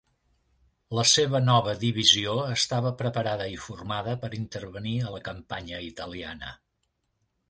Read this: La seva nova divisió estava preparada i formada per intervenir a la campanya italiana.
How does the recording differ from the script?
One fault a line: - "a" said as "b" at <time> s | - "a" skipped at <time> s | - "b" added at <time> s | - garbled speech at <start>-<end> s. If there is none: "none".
none